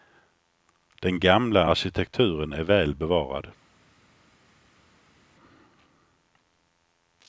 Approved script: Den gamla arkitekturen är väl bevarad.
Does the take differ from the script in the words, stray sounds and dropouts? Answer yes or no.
no